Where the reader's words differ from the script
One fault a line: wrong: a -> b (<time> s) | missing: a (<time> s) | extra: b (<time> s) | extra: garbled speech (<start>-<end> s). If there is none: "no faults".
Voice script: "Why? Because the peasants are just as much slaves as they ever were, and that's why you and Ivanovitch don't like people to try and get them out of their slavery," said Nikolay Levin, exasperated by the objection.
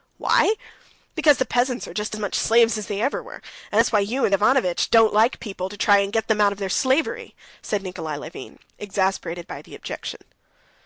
no faults